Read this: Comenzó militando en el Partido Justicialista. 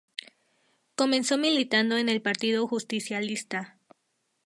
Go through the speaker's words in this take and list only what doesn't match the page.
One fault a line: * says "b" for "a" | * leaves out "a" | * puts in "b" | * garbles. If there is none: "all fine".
all fine